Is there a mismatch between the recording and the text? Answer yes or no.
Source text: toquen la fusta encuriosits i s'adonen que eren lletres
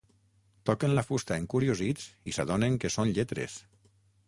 yes